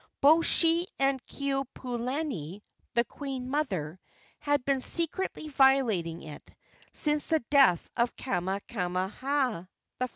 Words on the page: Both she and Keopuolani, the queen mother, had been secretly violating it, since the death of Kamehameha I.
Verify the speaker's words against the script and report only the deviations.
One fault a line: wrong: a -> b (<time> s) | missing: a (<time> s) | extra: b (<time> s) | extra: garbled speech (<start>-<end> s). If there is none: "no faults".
no faults